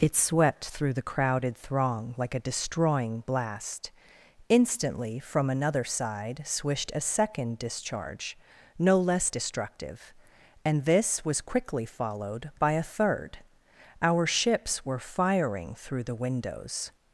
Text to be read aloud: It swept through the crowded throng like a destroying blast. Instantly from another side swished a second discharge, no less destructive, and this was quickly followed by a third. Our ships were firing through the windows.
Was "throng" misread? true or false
false